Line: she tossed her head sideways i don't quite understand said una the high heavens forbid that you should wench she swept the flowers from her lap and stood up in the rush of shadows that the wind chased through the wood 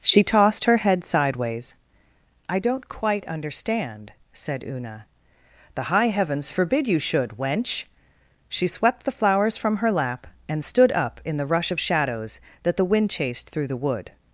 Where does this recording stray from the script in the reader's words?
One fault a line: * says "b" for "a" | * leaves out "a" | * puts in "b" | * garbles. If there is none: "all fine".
* leaves out "that"